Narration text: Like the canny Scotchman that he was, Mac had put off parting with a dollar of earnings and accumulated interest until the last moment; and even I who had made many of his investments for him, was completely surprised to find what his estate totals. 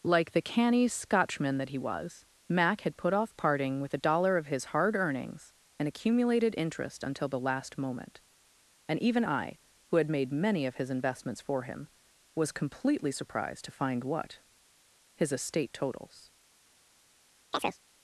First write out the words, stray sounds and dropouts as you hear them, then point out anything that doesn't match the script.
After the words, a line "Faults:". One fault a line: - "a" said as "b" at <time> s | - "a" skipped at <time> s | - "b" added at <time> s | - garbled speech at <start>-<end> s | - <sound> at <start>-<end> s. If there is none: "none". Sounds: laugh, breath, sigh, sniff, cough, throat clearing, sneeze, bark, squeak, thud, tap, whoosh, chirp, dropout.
Like the canny Scotchman that he was, Mac had put off parting with a dollar of his hard earnings and accumulated interest until the last moment; and even I who had made many of his investments for him, was completely surprised to find what his estate totals.
Faults:
- "his hard" added at 4.5 s
- chirp at 17.5-17.8 s